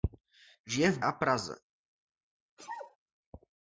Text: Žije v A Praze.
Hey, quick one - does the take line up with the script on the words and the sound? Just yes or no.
no